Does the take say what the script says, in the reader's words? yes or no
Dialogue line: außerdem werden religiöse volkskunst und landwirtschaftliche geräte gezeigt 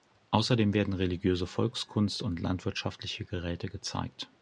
yes